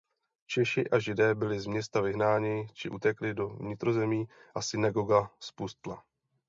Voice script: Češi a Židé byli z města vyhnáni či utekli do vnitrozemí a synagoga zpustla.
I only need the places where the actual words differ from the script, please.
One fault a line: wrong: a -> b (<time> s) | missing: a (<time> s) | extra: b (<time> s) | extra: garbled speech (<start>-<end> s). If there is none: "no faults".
no faults